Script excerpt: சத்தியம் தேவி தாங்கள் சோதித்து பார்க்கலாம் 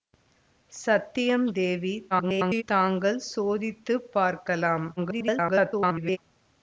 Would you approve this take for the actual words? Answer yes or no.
no